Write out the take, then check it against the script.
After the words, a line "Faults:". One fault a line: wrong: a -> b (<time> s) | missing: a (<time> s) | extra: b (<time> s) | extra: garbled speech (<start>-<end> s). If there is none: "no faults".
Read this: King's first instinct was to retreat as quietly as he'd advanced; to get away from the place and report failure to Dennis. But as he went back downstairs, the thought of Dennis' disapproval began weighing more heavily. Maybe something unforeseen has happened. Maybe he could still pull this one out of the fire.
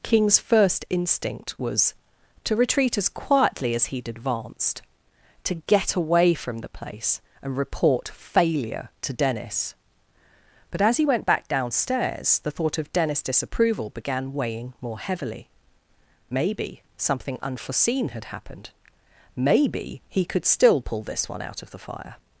King's first instinct was to retreat as quietly as he'd advanced; to get away from the place and report failure to Dennis. But as he went back downstairs, the thought of Dennis' disapproval began weighing more heavily. Maybe something unforeseen had happened. Maybe he could still pull this one out of the fire.
Faults:
wrong: has -> had (18.1 s)